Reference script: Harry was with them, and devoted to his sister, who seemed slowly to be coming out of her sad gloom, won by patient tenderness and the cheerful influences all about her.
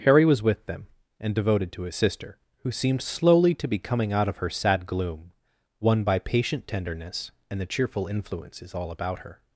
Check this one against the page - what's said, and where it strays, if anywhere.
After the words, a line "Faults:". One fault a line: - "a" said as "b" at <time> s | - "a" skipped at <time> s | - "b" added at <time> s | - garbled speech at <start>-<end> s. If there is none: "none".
Harry was with them, and devoted to his sister, who seemed slowly to be coming out of her sad gloom, won by patient tenderness and the cheerful influences all about her.
Faults:
none